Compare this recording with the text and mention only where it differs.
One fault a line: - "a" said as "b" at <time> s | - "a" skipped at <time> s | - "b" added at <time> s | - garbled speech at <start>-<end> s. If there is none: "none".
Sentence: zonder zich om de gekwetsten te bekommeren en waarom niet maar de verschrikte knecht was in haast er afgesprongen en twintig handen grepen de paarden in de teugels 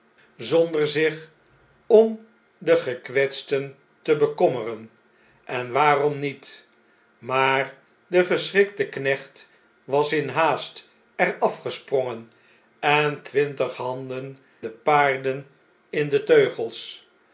- "grepen" skipped at 14.4 s